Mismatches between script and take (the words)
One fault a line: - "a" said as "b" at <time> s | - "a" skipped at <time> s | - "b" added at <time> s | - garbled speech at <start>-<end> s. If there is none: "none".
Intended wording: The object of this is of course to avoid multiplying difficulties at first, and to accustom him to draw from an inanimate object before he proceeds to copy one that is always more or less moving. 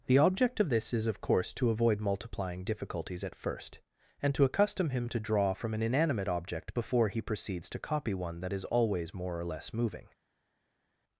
none